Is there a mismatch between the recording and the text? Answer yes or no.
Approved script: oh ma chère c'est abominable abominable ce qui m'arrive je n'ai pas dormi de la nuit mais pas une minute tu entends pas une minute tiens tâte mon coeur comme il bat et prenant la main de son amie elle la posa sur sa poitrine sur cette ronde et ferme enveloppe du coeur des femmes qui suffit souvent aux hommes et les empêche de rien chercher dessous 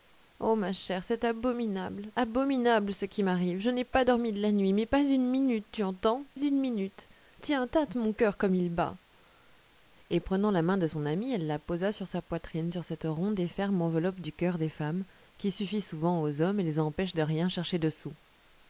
yes